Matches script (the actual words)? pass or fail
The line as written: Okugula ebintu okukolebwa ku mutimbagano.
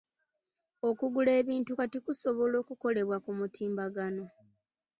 fail